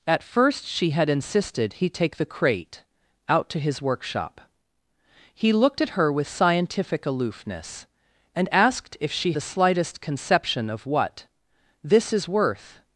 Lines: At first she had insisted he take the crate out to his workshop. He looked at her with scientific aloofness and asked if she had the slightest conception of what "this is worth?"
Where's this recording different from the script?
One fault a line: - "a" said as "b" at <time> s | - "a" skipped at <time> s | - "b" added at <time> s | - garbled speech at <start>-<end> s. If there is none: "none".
- "had" skipped at 9.3 s